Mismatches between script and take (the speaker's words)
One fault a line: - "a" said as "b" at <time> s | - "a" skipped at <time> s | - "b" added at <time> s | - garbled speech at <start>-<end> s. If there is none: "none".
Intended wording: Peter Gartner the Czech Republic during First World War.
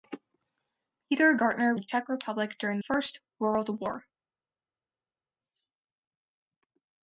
none